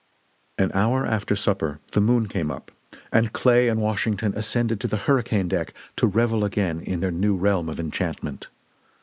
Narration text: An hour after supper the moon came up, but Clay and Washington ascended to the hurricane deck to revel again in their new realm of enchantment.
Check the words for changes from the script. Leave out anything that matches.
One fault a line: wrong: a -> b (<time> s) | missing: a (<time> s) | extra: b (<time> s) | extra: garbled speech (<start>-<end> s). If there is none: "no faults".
wrong: but -> and (3.1 s)